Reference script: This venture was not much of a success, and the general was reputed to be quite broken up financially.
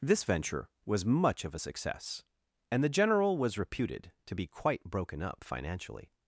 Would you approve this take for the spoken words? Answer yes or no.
no